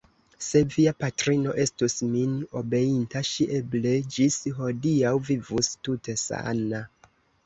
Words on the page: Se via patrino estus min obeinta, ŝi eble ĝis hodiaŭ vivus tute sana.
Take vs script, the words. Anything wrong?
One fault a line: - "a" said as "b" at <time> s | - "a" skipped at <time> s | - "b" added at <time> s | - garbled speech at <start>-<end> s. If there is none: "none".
none